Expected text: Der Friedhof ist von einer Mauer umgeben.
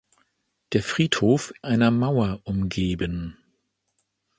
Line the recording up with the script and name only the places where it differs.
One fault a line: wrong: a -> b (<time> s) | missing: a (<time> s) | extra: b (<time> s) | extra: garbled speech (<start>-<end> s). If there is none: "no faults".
missing: ist von (1.5 s)